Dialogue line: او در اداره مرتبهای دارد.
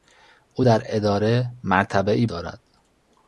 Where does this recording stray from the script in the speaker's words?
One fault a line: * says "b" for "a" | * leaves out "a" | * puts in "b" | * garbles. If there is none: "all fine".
all fine